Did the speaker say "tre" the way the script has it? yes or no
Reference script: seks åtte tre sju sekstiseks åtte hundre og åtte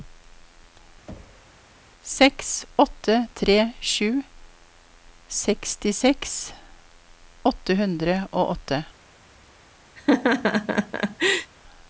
yes